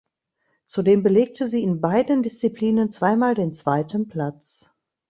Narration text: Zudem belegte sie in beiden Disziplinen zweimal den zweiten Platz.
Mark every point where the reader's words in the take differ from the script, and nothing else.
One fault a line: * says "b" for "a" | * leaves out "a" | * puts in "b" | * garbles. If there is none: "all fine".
all fine